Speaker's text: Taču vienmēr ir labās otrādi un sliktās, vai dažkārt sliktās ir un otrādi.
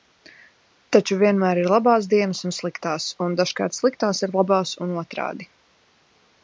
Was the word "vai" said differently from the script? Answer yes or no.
yes